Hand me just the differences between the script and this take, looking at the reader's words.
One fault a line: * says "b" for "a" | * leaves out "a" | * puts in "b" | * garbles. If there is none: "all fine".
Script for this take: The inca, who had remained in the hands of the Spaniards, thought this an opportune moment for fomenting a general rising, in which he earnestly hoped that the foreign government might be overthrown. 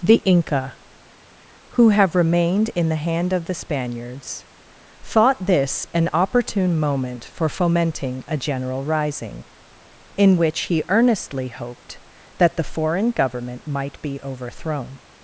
* says "have" for "had"
* says "hand" for "hands"